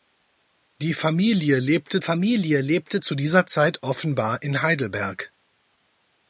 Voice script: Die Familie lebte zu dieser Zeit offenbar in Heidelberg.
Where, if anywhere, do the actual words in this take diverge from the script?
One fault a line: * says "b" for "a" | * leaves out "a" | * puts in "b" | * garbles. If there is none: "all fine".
* puts in "Familie lebte"